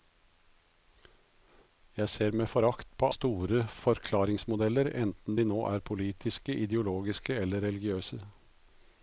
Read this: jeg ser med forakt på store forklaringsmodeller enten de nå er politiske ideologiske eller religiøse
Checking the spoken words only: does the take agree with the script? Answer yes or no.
yes